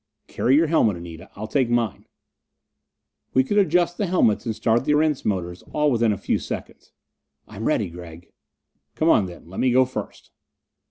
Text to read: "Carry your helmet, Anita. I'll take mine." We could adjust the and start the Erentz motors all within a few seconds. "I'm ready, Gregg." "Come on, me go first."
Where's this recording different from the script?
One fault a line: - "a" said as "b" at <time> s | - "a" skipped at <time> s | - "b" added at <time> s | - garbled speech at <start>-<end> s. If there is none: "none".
- "helmets" added at 4.1 s
- "then Let" added at 9.2 s